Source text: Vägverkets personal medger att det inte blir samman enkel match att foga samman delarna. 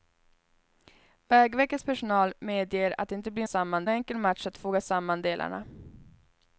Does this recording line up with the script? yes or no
yes